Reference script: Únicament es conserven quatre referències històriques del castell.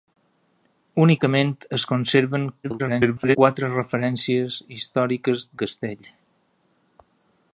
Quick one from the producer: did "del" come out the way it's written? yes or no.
no